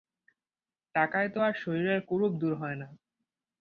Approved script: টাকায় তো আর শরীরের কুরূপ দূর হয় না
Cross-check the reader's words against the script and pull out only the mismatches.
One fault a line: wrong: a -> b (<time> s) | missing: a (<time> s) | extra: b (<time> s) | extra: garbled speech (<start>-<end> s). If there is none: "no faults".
no faults